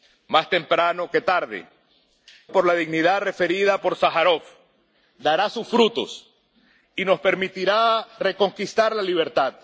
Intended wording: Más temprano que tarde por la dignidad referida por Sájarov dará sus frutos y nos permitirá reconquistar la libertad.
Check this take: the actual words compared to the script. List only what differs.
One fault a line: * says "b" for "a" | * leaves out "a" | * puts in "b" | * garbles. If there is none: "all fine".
all fine